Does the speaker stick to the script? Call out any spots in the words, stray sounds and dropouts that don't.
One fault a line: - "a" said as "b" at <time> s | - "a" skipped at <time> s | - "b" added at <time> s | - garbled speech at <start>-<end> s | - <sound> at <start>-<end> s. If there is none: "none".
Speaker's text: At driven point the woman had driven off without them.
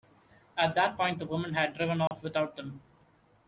- "driven" said as "that" at 0.7 s
- dropout at 2.1-2.1 s